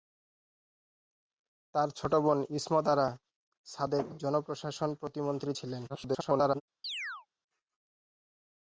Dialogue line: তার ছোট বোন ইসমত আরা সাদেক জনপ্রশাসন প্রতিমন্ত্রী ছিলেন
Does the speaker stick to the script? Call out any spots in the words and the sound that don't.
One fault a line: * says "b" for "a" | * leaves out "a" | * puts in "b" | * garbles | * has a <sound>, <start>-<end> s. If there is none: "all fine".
* garbles
* has a chirp, 6.8-7.3 s